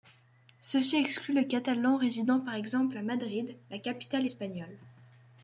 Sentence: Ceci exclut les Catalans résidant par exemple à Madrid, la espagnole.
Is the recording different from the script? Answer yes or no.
yes